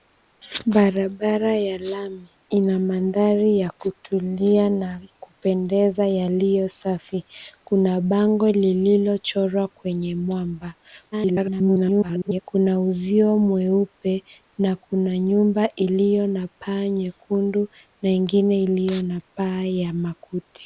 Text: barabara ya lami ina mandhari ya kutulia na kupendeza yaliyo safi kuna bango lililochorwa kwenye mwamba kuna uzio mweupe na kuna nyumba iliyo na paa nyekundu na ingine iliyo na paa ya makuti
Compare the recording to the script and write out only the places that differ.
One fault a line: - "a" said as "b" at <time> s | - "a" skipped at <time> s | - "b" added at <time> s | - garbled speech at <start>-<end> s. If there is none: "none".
- garbled speech at 11.1-12.4 s